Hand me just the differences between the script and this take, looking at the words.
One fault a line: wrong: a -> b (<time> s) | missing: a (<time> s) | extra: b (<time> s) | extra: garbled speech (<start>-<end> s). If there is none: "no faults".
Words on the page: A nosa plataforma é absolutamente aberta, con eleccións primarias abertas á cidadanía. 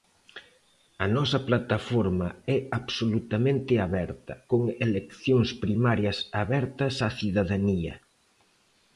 no faults